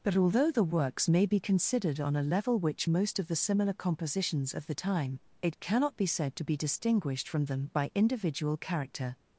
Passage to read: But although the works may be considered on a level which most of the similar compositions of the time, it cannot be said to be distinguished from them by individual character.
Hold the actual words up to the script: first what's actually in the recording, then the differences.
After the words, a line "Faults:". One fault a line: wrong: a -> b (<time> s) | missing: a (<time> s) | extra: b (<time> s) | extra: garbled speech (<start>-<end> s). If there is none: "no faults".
But although the works may be considered on a level which most of the similar compositions of the time, it cannot be said to be distinguished from them by individual character.
Faults:
no faults